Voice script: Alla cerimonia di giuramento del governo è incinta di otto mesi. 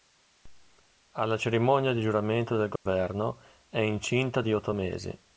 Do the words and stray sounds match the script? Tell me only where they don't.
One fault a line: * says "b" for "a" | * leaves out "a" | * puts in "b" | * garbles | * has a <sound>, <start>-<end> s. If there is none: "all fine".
* has a dropout, 2.8-2.9 s